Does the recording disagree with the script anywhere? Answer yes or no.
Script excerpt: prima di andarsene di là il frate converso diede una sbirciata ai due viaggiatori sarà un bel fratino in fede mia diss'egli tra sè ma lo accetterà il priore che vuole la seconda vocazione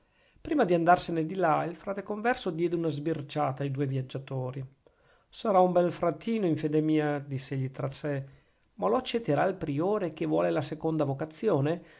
no